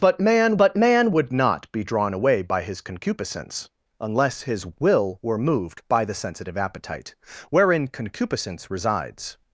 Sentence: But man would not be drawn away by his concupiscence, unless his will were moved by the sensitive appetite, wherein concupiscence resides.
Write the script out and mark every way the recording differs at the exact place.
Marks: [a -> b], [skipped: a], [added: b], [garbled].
But man [added: but man] would not be drawn away by his concupiscence, unless his will were moved by the sensitive appetite, wherein concupiscence resides.